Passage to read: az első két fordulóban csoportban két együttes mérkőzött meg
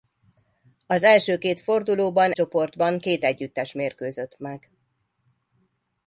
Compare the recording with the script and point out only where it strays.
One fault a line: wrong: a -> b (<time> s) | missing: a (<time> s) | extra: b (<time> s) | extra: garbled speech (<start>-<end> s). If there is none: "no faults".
no faults